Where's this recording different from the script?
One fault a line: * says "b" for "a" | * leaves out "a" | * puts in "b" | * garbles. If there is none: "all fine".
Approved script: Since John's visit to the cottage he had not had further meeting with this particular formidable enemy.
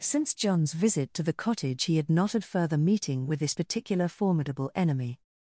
all fine